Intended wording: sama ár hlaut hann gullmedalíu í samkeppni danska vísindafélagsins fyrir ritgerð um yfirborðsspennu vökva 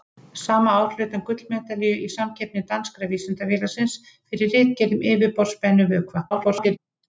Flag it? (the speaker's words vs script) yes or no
yes